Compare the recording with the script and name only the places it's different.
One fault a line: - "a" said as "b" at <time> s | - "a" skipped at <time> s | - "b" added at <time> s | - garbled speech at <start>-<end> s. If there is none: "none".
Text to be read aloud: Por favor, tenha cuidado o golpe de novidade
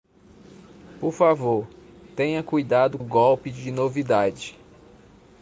none